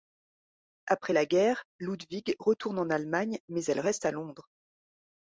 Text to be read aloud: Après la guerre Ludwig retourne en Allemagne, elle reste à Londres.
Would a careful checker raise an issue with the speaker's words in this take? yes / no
yes